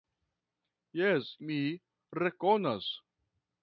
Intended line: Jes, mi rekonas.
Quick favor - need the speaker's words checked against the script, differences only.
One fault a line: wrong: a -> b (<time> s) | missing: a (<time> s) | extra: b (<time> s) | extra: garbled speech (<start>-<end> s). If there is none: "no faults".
no faults